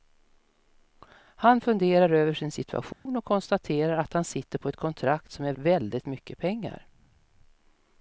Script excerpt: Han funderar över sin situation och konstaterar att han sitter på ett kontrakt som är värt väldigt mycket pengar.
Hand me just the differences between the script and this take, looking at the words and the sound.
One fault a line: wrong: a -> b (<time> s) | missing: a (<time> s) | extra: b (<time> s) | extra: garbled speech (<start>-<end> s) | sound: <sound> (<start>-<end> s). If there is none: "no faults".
sound: dropout (2.9-3.1 s)
missing: värt (5.5 s)